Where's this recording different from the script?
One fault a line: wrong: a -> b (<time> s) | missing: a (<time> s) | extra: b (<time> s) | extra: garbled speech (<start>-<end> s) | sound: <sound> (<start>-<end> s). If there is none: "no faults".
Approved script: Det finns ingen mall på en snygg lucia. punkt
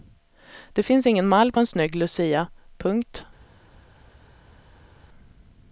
no faults